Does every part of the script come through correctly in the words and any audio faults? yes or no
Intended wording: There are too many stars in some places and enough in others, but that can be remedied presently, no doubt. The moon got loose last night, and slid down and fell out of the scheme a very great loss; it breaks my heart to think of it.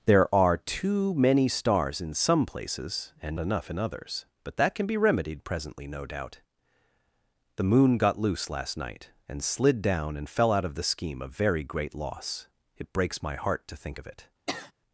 no